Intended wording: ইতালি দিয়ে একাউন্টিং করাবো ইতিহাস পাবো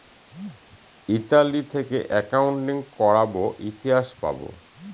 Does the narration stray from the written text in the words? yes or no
yes